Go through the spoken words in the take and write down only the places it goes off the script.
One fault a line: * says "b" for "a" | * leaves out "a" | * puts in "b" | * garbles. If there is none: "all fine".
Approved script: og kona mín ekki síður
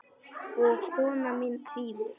* leaves out "ekki"